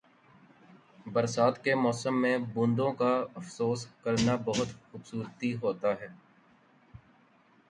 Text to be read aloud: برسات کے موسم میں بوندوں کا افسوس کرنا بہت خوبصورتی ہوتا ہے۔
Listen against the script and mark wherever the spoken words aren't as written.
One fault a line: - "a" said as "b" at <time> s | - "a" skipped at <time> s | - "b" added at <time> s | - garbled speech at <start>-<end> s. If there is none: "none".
none